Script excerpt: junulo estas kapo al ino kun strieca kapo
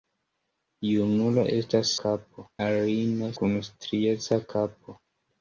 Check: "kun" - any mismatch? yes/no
no